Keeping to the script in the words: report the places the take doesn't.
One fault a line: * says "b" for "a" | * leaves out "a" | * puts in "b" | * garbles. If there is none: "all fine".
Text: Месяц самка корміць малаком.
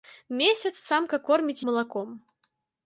all fine